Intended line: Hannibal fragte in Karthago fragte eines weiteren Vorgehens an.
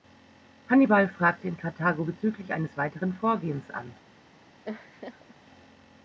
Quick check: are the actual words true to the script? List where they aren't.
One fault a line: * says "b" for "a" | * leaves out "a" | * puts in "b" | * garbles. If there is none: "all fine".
* says "bezüglich" for "fragte"